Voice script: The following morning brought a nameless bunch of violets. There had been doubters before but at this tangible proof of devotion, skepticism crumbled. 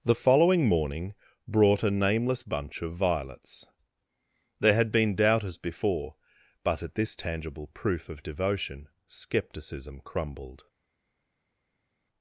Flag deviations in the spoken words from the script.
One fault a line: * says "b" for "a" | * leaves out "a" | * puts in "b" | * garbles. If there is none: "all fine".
all fine